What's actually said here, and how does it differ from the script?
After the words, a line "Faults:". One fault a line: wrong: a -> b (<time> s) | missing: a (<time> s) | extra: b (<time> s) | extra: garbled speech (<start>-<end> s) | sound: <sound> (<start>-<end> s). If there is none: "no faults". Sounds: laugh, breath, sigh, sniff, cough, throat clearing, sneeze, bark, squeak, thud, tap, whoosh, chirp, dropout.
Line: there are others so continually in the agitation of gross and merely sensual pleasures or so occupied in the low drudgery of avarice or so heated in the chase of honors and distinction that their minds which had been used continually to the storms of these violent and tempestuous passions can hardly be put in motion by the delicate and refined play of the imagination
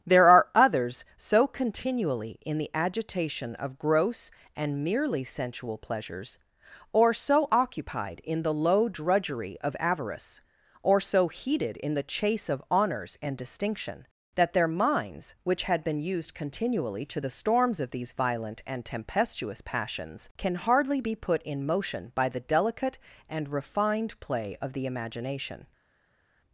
there are others so continually in the agitation of gross and merely sensual pleasures or so occupied in the low drudgery of avarice or so heated in the chase of honors and distinction that their minds which had been used continually to the storms of these violent and tempestuous passions can hardly be put in motion by the delicate and refined play of the imagination
Faults:
no faults